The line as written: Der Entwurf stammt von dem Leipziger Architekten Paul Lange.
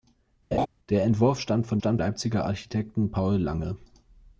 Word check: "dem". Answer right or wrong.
wrong